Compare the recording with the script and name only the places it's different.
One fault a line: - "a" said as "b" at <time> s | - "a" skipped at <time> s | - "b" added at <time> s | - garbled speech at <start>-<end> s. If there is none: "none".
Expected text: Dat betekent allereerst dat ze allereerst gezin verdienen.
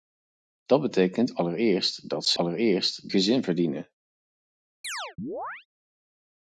none